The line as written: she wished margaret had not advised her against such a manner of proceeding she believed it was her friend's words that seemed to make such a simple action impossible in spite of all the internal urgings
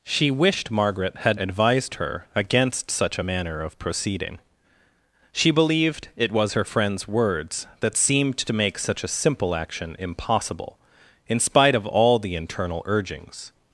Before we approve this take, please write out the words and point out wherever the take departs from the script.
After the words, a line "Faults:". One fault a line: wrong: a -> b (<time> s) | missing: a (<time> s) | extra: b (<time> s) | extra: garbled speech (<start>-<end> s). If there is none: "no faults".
she wished margaret had advised her against such a manner of proceeding she believed it was her friend's words that seemed to make such a simple action impossible in spite of all the internal urgings
Faults:
missing: not (1.4 s)